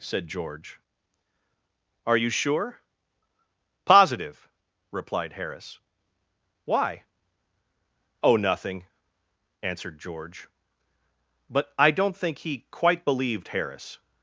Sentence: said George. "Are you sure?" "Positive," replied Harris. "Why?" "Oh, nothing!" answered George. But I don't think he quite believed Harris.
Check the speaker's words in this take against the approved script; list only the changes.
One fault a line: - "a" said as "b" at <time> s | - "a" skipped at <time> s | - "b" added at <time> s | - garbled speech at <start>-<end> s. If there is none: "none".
none